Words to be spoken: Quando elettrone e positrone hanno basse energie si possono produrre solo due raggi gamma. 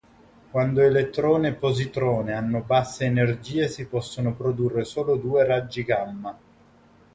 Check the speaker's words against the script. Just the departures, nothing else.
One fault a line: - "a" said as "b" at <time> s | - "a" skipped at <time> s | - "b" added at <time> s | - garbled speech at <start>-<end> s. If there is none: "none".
none